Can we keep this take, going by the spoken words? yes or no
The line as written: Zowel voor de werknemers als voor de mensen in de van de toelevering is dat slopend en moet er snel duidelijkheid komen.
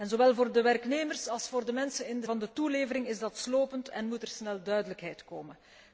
yes